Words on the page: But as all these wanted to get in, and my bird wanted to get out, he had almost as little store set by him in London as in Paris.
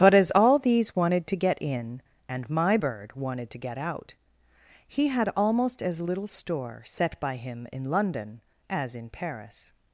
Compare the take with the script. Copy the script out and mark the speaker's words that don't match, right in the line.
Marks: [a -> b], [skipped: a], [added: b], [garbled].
But as all these wanted to get in, and my bird wanted to get out, he had almost as little store set by him in London as in Paris.